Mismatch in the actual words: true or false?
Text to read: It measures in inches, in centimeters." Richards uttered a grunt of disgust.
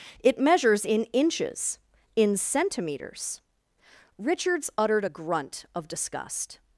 false